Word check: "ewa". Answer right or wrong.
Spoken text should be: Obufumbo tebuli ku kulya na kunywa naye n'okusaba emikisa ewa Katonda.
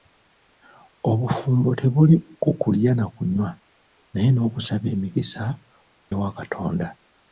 right